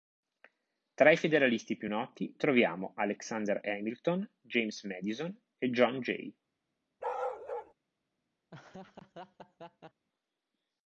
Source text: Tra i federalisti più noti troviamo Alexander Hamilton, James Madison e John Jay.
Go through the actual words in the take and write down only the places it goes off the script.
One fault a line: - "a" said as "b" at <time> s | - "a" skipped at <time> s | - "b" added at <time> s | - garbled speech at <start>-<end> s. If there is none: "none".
none